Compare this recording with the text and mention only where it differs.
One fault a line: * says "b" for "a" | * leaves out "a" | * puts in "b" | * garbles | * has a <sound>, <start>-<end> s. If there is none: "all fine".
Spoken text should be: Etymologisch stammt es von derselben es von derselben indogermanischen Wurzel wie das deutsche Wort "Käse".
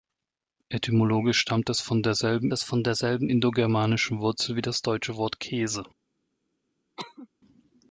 * has a cough, 7.0-7.3 s